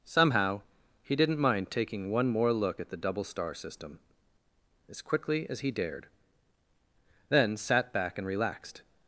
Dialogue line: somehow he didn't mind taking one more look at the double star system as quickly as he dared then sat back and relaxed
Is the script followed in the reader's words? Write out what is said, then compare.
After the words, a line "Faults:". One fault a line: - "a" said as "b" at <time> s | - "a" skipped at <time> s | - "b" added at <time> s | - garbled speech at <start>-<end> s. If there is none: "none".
somehow he didn't mind taking one more look at the double star system as quickly as he dared then sat back and relaxed
Faults:
none